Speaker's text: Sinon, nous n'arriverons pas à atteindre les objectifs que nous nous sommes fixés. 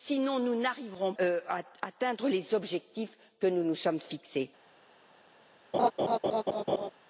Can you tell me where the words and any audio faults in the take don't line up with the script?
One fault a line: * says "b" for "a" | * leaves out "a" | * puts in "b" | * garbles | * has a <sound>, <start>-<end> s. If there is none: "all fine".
* leaves out "pas"
* has a laugh, 5.7-6.9 s